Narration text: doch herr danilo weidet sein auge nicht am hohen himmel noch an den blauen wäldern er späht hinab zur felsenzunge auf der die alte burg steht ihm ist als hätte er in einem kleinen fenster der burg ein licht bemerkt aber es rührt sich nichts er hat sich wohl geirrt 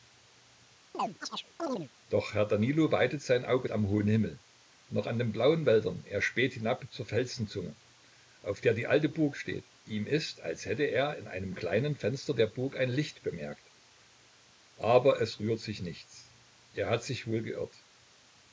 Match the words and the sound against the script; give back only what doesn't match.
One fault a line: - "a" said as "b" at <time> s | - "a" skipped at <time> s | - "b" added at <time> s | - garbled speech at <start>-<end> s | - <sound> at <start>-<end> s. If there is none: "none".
- chirp at 0.9-1.9 s
- "nicht" skipped at 3.7 s